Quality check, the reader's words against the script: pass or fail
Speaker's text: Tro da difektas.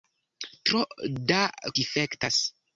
pass